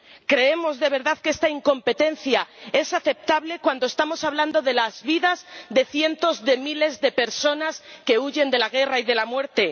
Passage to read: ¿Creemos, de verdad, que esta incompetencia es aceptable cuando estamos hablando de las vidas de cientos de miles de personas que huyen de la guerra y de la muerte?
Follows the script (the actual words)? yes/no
yes